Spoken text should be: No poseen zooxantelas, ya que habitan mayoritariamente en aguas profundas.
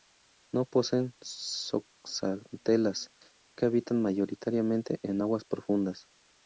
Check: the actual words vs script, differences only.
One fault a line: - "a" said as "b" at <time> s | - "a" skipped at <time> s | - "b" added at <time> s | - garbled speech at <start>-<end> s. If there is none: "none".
- "ya" skipped at 3.1 s